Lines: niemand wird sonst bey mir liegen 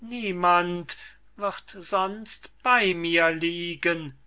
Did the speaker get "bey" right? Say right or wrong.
right